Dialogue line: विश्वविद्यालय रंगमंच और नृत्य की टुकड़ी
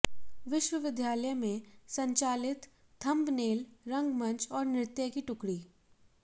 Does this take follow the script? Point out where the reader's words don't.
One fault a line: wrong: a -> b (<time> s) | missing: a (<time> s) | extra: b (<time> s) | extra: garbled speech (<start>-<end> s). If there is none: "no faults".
extra: में संचालित थंबनेल (1.3 s)